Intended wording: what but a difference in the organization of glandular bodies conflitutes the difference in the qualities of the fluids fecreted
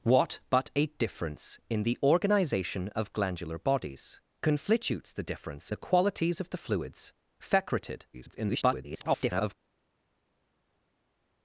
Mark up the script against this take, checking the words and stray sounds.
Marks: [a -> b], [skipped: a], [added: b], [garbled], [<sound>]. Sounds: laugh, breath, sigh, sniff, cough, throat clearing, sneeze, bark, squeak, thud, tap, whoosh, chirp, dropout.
what but a difference in the organization of glandular bodies conflitutes the difference [skipped: in] the qualities of the fluids fecreted [garbled]